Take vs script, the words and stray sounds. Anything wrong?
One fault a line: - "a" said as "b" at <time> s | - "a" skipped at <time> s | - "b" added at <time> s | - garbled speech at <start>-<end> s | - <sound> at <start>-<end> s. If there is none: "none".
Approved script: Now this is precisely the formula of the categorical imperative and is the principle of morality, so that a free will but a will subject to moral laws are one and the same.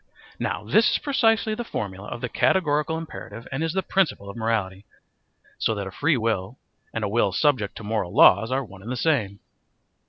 - "but" said as "and" at 6.9 s